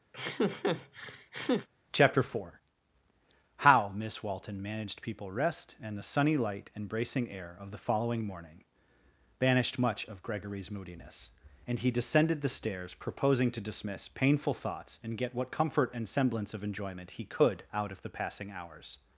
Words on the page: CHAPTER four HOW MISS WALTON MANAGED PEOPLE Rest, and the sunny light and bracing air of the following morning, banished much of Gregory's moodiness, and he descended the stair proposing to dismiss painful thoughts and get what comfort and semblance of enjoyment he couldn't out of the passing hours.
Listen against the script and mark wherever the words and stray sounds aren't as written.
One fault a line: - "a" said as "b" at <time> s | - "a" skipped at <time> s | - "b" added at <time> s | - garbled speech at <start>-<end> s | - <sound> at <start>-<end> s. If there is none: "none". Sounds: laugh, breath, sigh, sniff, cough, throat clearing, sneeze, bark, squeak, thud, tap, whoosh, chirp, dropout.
- laugh at 0.1-1.7 s
- "stair" said as "stairs" at 12.5 s
- "couldn't" said as "could" at 17.2 s